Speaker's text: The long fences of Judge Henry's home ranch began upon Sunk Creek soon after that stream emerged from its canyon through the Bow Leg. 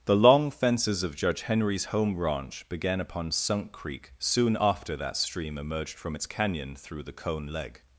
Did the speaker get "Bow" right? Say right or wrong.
wrong